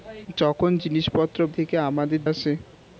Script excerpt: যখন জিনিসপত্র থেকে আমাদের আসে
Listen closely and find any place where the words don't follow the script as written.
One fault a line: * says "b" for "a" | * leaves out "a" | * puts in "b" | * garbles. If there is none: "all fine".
all fine